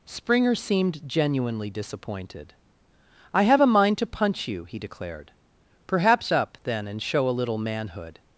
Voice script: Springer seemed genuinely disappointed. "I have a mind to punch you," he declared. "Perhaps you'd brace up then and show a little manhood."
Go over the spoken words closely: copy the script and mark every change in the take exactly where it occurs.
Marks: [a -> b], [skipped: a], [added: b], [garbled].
Springer seemed genuinely disappointed. "I have a mind to punch you," he declared. "Perhaps [skipped: you'd brace] up then and show a little manhood."